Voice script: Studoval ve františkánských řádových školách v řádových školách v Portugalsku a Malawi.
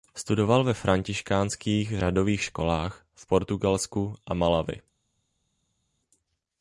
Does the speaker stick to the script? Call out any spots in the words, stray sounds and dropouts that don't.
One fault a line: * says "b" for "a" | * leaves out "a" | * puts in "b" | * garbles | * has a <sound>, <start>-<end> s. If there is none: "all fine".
* leaves out "řádových školách v"